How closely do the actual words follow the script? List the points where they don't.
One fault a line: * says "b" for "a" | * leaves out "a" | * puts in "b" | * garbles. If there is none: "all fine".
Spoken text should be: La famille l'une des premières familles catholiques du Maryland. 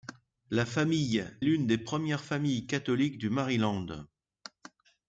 all fine